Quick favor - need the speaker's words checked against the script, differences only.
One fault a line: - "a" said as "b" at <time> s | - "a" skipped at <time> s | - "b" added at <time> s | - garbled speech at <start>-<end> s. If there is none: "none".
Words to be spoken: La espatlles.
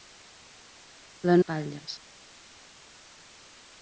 none